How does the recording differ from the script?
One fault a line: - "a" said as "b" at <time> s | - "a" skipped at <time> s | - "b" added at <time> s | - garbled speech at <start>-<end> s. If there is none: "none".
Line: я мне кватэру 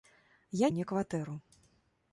none